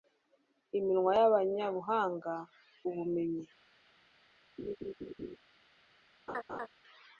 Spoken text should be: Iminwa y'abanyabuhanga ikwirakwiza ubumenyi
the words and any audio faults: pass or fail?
fail